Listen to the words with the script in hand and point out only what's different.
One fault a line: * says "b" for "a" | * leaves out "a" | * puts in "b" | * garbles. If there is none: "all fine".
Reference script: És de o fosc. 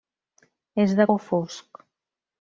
all fine